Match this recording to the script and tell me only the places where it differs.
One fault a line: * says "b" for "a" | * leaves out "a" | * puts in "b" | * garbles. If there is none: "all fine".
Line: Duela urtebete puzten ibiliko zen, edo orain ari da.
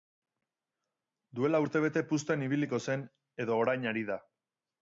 all fine